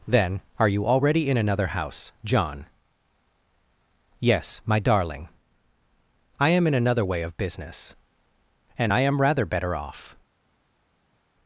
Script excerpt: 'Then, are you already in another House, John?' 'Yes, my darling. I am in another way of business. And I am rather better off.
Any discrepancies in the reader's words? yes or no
no